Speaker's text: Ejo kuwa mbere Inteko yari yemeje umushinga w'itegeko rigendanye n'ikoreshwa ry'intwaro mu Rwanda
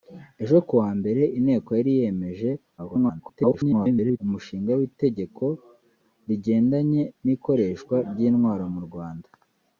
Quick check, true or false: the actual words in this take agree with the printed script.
false